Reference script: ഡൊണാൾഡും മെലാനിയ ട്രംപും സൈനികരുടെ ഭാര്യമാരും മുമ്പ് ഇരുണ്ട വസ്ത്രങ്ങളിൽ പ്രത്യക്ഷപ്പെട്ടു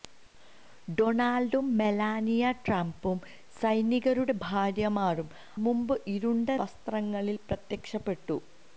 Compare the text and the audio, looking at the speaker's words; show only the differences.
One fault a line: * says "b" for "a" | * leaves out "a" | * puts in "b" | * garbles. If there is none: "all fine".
all fine